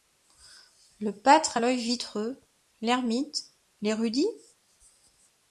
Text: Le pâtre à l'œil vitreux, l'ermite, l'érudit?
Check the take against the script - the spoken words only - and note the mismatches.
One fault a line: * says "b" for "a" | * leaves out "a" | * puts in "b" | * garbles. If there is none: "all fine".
all fine